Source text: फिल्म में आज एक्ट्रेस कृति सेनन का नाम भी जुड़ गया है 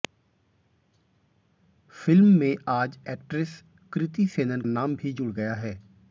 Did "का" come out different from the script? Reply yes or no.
yes